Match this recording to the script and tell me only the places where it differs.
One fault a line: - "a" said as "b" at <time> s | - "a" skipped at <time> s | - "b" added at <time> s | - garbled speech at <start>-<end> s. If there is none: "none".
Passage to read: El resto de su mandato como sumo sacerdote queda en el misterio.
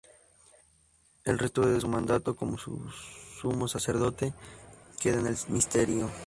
none